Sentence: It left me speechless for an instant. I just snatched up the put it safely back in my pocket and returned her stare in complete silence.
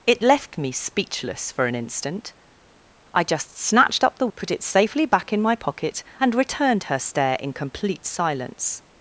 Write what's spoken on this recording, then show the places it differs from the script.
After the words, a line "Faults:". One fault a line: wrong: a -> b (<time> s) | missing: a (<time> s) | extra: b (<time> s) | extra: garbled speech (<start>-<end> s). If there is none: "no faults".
It left me speechless for an instant. I just snatched up the put it safely back in my pocket and returned her stare in complete silence.
Faults:
no faults